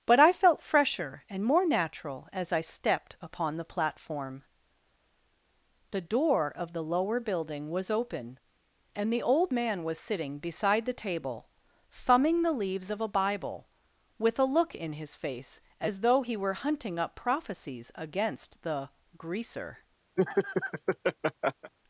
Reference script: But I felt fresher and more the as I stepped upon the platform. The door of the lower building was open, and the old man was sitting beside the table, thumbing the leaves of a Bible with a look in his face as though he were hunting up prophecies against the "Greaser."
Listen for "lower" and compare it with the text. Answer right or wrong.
right